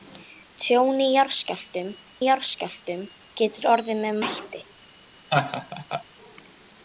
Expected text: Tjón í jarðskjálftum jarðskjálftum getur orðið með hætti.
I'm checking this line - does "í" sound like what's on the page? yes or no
yes